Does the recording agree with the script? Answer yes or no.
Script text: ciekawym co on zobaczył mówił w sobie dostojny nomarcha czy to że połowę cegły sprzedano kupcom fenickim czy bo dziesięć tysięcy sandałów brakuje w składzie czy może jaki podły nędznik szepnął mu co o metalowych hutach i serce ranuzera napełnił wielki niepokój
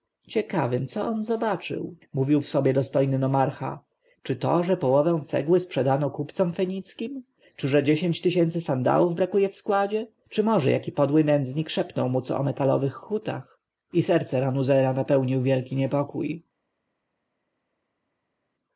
no